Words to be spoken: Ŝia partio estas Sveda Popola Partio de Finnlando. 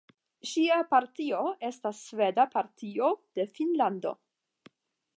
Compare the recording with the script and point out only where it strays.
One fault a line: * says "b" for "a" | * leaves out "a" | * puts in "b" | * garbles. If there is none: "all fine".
* leaves out "Popola"